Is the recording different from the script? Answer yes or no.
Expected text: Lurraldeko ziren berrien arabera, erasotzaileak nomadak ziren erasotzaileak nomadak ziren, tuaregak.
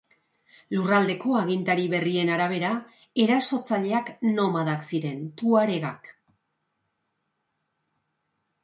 yes